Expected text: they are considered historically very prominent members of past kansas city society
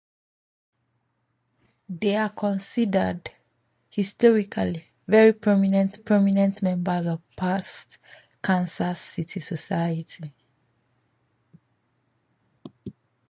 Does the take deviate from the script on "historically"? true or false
false